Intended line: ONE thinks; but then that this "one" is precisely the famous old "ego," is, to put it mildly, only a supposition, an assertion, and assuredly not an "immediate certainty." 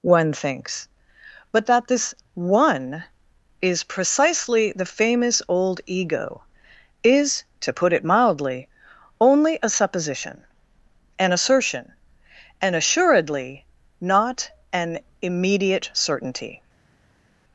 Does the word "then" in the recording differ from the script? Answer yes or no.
yes